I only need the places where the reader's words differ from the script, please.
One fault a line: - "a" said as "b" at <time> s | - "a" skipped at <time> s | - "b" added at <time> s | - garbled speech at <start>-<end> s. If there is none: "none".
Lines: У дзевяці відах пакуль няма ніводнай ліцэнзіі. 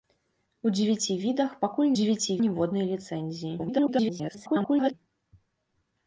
- "няма" said as "дзевяці" at 2.0 s
- garbled speech at 3.6-4.9 s